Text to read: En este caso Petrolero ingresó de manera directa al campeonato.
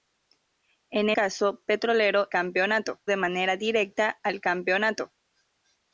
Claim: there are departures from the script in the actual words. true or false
true